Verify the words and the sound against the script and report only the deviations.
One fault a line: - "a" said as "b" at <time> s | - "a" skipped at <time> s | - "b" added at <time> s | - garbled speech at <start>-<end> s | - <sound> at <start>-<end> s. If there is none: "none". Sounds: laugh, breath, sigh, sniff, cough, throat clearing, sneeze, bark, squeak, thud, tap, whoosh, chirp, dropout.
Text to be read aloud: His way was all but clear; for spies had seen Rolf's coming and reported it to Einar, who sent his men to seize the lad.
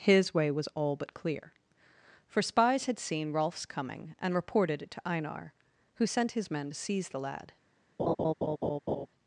- laugh at 8.0-9.1 s